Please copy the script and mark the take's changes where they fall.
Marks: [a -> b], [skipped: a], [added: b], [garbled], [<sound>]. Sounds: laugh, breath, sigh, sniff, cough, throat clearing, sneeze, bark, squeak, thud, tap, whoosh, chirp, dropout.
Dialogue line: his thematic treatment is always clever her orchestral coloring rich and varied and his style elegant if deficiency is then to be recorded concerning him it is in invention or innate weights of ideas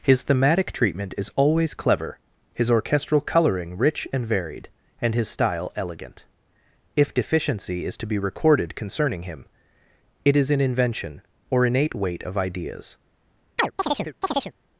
his thematic treatment is always clever [her -> his] orchestral coloring rich and varied and his style elegant if deficiency is [skipped: then] to be recorded concerning him it is in invention or innate [weights -> weight] of ideas [chirp]